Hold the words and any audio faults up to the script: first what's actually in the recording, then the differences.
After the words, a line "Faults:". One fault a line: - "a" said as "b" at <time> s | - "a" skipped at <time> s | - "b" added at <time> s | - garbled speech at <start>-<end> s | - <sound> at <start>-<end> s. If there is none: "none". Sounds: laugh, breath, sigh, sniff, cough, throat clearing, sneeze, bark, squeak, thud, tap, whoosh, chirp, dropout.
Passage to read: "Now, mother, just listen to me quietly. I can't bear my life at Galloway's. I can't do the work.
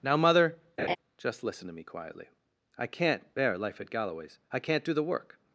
"Now, mother, just listen to me quietly. I can't bear life at Galloway's. I can't do the work.
Faults:
- laugh at 0.8-1.0 s
- "my" skipped at 3.6 s